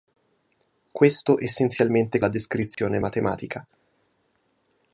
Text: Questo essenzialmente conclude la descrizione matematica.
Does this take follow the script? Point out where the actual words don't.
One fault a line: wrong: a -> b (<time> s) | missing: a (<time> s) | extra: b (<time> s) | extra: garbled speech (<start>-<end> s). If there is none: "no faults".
missing: conclude (2.2 s)